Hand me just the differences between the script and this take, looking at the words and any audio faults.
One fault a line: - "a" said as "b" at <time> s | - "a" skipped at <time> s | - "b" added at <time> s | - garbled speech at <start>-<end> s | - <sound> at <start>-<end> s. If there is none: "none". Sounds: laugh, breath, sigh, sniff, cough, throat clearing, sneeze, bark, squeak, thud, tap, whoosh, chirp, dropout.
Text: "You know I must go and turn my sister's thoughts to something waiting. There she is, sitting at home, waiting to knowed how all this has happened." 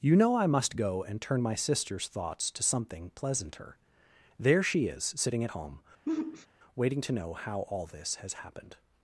- "waiting" said as "pleasanter" at 3.1 s
- sigh at 6.1-6.5 s
- "knowed" said as "know" at 7.1 s